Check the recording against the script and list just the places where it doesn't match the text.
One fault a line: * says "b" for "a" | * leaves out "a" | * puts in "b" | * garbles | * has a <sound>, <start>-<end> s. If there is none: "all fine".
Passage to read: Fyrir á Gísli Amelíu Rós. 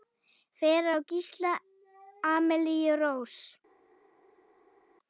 all fine